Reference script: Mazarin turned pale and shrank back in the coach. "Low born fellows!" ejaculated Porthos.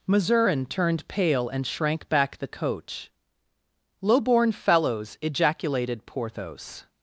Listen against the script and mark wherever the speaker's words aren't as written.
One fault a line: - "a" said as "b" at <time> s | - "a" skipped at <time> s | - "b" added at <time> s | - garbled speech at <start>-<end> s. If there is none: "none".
- "in" skipped at 2.4 s